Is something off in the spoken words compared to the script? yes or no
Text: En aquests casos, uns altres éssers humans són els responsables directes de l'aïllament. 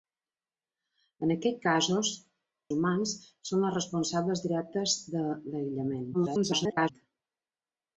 yes